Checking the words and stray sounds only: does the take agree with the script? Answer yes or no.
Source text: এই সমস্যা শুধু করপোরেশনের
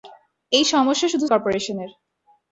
yes